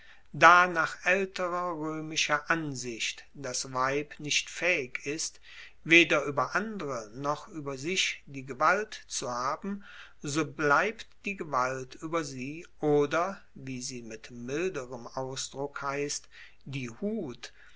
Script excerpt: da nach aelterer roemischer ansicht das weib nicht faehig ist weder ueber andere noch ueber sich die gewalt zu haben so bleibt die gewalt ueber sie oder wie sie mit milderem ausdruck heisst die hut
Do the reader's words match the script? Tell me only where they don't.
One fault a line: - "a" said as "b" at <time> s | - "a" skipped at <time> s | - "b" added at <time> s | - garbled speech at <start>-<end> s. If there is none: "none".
none